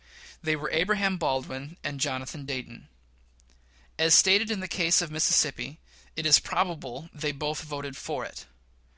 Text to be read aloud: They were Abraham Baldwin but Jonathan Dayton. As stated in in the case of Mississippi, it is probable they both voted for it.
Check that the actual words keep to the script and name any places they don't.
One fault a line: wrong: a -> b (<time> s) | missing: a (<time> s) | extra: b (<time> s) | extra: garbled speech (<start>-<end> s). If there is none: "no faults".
wrong: but -> and (1.8 s)
missing: in (4.6 s)